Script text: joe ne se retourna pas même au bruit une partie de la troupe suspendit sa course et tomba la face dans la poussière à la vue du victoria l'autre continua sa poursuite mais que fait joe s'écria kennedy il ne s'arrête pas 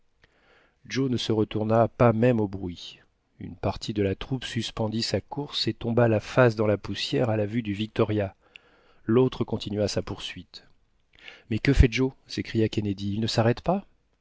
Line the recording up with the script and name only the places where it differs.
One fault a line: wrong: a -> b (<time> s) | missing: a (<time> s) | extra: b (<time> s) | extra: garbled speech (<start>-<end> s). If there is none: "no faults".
no faults